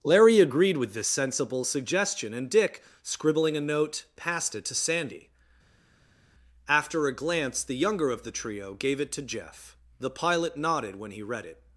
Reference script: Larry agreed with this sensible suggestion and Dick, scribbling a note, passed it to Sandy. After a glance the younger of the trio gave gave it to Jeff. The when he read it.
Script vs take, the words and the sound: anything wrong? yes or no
yes